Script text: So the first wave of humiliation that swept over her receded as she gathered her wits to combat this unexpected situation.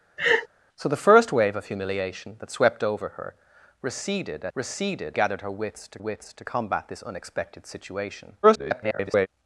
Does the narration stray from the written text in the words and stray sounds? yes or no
yes